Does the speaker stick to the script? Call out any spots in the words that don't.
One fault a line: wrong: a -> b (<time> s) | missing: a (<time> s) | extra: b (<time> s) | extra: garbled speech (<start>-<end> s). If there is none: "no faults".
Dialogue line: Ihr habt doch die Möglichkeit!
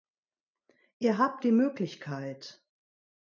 missing: doch (1.4 s)